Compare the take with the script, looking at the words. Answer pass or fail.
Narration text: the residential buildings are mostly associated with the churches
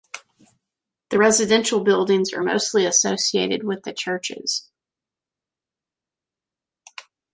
pass